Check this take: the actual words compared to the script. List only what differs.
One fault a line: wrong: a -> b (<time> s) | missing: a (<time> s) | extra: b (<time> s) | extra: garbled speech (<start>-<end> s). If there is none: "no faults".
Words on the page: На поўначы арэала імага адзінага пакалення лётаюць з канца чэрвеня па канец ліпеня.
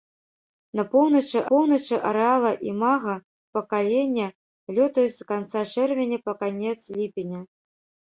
extra: поўначы (1.5 s)
missing: адзінага (3.1 s)